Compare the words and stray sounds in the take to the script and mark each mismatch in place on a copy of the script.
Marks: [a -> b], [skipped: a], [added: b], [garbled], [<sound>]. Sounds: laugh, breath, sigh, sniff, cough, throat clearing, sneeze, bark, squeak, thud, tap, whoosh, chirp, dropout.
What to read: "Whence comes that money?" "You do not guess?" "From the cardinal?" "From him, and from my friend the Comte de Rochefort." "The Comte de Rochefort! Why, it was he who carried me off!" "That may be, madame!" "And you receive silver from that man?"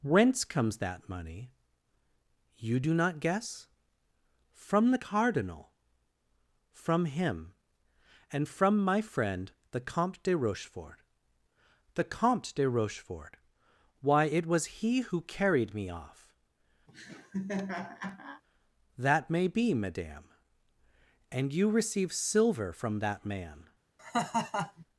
"Whence comes that money?" "You do not guess?" "From the cardinal?" "From him, and from my friend the Comte de Rochefort." "The Comte de Rochefort! Why, it was he who carried me off!" [laugh] "That may be, madame!" "And you receive silver from that man?" [laugh]